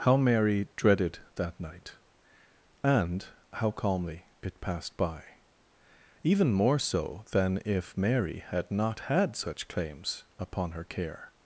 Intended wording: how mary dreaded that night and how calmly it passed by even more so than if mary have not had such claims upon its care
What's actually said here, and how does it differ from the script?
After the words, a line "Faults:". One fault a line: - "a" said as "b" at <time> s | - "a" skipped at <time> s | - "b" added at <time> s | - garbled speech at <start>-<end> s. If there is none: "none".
how mary dreaded that night and how calmly it passed by even more so than if mary had not had such claims upon her care
Faults:
- "have" said as "had" at 8.4 s
- "its" said as "her" at 10.7 s